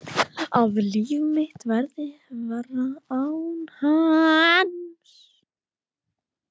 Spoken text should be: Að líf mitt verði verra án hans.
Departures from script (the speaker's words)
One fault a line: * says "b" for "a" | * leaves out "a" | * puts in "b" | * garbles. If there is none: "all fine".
all fine